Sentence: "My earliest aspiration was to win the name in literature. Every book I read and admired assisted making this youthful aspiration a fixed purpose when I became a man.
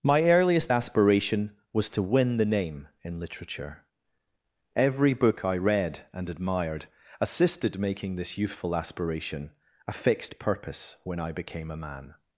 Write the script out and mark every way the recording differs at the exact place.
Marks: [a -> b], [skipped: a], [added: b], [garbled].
"My earliest aspiration was to win the name in literature. Every book I read and admired assisted making this youthful aspiration a fixed purpose when I became a man.